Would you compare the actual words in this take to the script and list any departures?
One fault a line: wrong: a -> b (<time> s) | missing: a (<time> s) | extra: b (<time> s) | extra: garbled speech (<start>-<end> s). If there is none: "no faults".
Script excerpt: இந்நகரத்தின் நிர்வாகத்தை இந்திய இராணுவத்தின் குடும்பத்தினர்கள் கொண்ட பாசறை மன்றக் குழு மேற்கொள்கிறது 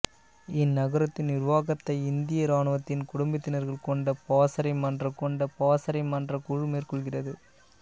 extra: கொண்ட பாசறை மன்றக் (5.2 s)